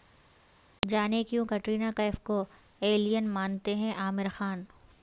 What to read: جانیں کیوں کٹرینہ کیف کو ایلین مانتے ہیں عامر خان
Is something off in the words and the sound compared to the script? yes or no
no